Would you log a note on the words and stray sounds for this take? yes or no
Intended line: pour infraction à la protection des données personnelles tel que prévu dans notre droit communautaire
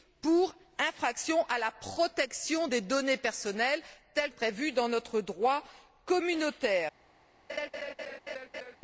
yes